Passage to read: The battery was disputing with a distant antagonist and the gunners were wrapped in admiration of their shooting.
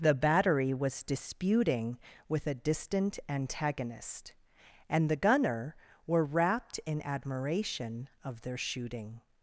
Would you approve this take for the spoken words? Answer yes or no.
no